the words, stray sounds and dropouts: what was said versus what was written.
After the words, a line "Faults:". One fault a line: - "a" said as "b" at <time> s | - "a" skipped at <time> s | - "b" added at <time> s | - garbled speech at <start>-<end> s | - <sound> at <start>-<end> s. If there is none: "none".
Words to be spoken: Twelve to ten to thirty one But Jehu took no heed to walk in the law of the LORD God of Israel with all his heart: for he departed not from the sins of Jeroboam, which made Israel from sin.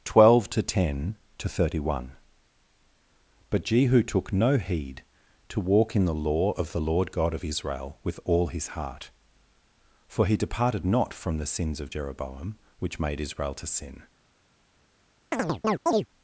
Twelve to ten to thirty one But Jehu took no heed to walk in the law of the LORD God of Israel with all his heart: for he departed not from the sins of Jeroboam, which made Israel to sin.
Faults:
- "from" said as "to" at 13.5 s
- chirp at 15.3-16.1 s